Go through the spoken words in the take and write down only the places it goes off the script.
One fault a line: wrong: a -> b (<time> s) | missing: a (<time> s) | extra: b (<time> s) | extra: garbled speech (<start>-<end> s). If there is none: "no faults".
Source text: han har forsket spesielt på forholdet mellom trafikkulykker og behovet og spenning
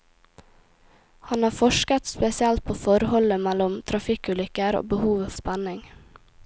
no faults